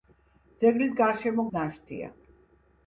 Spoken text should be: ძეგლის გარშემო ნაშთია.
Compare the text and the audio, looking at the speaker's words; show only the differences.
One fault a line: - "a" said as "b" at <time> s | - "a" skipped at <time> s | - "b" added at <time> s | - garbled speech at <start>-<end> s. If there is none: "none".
none